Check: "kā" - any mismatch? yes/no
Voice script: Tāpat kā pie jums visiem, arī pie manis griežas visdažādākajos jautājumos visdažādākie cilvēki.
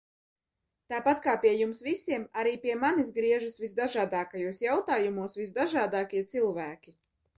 no